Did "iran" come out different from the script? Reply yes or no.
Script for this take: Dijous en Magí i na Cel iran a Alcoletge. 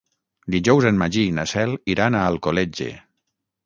no